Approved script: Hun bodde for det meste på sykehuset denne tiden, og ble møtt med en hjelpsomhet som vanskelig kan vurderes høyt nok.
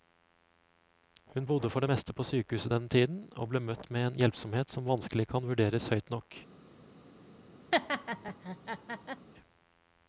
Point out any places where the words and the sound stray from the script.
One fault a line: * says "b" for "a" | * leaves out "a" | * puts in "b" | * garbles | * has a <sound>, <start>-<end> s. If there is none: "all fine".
* has a laugh, 7.7-9.3 s